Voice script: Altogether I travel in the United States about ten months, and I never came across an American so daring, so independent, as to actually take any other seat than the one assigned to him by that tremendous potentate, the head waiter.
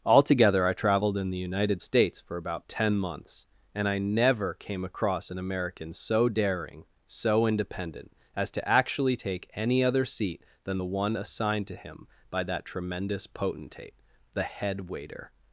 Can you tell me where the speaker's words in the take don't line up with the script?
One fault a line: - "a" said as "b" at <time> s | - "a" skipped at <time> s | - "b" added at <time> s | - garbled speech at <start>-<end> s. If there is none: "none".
- "travel" said as "traveled" at 0.7 s
- "for" added at 2.2 s